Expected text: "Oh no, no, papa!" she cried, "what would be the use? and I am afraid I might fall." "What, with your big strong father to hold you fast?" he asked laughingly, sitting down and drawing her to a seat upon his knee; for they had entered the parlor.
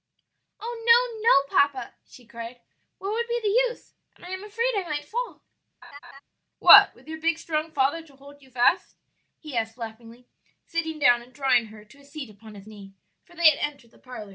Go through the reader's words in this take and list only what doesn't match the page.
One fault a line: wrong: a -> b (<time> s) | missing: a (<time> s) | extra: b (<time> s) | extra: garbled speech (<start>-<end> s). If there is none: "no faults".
no faults